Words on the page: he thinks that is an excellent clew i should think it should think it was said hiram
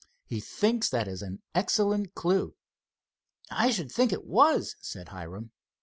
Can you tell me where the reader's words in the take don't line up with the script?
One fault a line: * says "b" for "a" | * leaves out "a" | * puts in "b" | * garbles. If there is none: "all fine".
* leaves out "should think it"